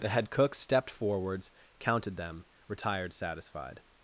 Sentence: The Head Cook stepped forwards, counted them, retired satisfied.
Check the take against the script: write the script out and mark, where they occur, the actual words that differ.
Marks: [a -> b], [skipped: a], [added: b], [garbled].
The Head Cook stepped forwards, counted them, retired satisfied.